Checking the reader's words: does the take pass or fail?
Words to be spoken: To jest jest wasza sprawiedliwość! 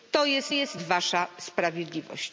pass